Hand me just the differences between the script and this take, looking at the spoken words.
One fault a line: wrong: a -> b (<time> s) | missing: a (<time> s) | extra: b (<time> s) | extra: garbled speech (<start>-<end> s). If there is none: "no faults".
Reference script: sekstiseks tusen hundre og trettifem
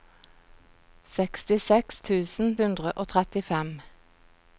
no faults